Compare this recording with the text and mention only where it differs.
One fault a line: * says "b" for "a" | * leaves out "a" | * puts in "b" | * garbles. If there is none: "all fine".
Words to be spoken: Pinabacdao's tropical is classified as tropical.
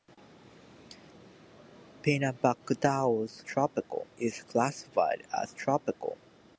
all fine